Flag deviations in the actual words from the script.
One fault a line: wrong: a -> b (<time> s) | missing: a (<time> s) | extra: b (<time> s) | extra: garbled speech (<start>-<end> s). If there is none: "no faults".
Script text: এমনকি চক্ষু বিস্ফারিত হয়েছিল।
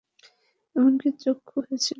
missing: বিস্ফারিত (1.6 s)